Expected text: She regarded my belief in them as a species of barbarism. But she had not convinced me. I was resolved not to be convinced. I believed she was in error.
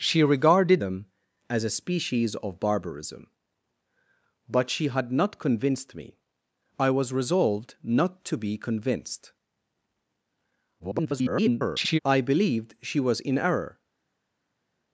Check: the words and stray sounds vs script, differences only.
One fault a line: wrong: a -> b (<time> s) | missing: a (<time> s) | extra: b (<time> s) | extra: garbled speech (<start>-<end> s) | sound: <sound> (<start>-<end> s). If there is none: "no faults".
missing: my belief in (0.8 s)
extra: garbled speech (10.8-12.0 s)